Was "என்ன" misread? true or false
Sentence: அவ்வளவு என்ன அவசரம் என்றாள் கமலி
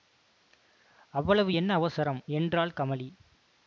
false